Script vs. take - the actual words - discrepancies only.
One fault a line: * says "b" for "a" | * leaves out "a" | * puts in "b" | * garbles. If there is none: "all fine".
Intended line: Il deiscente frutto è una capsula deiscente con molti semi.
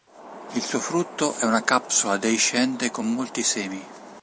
* says "suo" for "deiscente"